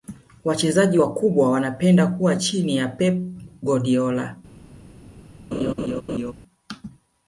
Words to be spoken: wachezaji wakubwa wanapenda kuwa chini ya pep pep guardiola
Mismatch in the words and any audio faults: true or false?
true